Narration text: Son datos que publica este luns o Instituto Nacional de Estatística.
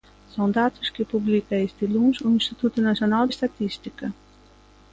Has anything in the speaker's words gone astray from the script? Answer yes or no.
yes